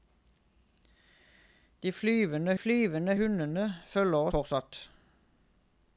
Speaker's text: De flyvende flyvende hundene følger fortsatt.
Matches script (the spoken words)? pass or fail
pass